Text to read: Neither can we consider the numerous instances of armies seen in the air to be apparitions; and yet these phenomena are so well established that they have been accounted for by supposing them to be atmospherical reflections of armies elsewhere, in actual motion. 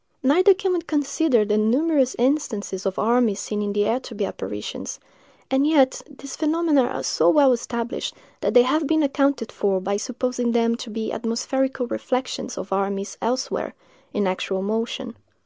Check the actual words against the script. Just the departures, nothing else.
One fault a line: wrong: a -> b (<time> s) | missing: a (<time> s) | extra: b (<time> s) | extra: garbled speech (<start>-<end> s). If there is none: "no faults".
no faults